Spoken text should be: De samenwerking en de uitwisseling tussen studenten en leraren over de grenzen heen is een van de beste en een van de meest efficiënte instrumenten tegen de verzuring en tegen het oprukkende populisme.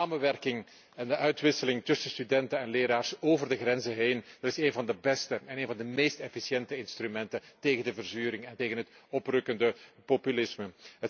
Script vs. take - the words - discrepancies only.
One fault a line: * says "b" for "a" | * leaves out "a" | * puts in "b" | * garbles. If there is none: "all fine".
all fine